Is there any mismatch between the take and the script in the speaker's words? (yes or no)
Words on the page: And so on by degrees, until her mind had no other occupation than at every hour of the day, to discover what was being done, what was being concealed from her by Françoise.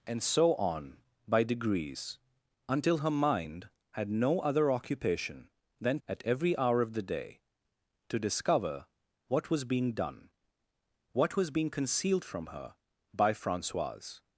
no